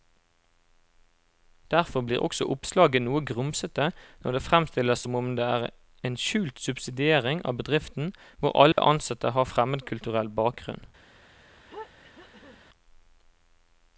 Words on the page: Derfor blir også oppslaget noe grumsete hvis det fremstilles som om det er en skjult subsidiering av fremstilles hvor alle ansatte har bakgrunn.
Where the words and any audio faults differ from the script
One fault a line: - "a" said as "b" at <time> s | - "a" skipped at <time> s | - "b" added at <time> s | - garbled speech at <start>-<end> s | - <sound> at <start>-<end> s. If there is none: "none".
- "hvis" said as "når" at 4.2 s
- "fremstilles" said as "bedriften" at 7.6 s
- dropout at 8.7-8.8 s
- "fremmedkulturell" added at 9.5 s
- throat clearing at 11.7-12.6 s